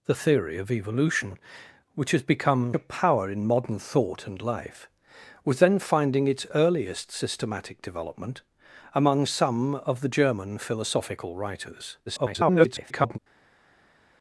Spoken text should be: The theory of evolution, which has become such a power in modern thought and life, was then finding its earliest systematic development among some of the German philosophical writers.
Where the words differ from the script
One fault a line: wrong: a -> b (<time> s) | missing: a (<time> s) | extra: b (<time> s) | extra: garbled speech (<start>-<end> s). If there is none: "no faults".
missing: such (2.7 s)
extra: garbled speech (12.1-13.2 s)